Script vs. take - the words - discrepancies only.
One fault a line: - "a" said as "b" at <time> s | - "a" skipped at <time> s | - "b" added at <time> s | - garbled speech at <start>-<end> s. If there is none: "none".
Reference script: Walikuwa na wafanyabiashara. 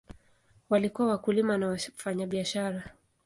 - "wakulima" added at 1.1 s